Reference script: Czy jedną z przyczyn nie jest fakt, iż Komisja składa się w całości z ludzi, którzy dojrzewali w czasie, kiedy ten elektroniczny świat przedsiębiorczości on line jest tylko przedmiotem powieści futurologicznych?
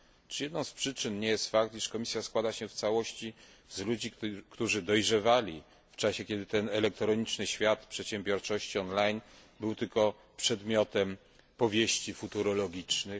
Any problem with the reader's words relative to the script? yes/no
yes